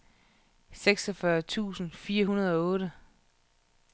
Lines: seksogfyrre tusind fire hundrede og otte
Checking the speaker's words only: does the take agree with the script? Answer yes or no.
yes